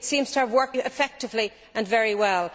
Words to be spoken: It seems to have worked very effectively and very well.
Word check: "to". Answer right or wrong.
right